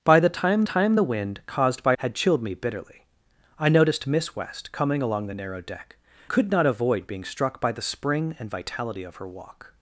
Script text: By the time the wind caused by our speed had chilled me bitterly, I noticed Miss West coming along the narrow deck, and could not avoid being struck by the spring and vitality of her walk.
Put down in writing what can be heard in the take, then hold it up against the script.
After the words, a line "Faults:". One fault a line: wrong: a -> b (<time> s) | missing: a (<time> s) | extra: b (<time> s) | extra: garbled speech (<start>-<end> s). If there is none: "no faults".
By the time time the wind caused by had chilled me bitterly, I noticed Miss West coming along the narrow deck, could not avoid being struck by the spring and vitality of her walk.
Faults:
extra: time (0.6 s)
missing: our speed (2.0 s)
missing: and (6.0 s)